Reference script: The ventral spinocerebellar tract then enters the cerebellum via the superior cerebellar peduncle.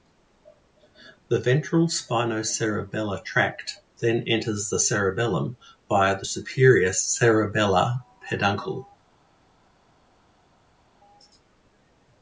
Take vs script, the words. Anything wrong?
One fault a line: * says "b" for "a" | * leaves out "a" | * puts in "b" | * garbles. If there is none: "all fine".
all fine